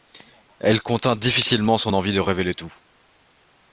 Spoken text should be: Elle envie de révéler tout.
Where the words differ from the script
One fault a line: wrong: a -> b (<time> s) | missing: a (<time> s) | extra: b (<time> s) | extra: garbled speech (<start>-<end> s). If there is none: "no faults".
extra: contint difficilement son (0.8 s)